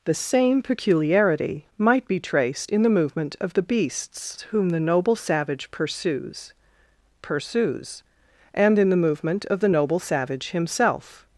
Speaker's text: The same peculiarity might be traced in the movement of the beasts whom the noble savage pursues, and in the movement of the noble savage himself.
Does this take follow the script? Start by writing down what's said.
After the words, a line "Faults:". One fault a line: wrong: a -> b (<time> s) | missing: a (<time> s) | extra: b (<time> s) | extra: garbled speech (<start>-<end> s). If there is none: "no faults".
The same peculiarity might be traced in the movement of the beasts whom the noble savage pursues pursues, and in the movement of the noble savage himself.
Faults:
extra: pursues (7.2 s)